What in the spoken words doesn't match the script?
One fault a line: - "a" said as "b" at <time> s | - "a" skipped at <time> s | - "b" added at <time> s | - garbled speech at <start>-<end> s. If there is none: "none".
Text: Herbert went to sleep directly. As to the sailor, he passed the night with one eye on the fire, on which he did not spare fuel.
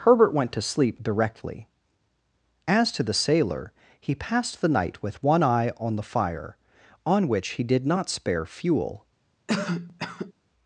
none